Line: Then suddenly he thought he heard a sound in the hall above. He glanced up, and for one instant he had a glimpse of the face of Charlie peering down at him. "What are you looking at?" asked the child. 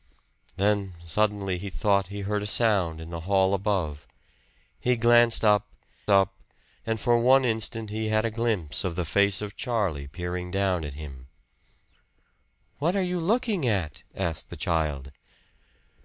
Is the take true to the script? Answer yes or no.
no